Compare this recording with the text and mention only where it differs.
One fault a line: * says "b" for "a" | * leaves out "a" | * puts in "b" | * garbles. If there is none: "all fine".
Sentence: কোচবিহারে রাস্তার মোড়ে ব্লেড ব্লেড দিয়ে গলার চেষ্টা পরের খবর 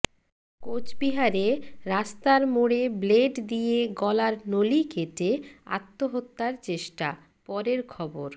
* leaves out "ব্লেড"
* puts in "নলি কেটে আত্মহত্যার"